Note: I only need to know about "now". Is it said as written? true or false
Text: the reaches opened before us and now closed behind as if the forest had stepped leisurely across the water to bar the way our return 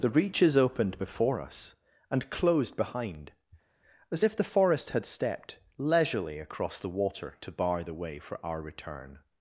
false